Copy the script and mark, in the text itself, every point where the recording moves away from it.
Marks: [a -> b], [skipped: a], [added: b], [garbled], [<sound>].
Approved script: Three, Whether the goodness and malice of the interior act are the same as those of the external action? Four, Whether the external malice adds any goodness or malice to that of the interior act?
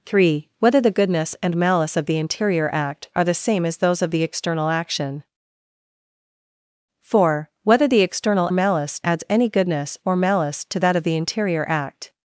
Three, Whether the goodness and malice of the interior act are the same as those of the external action? Four, Whether the external malice adds any goodness or malice to that of the interior act?